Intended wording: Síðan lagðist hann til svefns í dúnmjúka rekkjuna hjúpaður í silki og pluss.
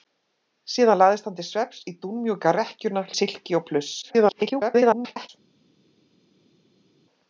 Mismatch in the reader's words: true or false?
true